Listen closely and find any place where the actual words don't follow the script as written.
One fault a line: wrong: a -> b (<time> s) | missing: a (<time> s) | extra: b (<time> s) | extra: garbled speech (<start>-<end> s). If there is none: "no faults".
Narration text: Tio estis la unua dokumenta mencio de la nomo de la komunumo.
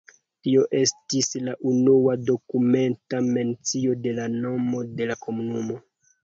no faults